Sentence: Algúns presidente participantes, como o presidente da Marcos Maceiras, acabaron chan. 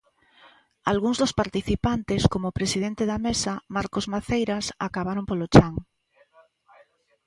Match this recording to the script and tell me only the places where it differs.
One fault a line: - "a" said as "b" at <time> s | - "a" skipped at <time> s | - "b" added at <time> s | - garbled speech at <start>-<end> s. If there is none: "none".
- "presidente" said as "dos" at 1.2 s
- "Mesa" added at 3.2 s
- "polo" added at 5.3 s